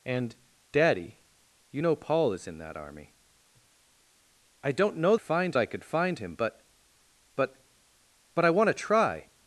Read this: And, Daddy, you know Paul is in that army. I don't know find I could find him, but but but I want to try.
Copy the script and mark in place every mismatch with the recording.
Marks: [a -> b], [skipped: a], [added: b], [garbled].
And, Daddy, you know Paul is in that army. I don't know find I could find him, but but but I want to try.